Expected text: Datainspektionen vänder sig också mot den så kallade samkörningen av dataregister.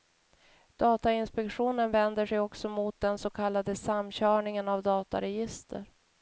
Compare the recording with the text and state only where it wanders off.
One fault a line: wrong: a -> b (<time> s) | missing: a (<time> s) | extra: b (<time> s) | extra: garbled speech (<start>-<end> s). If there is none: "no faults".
no faults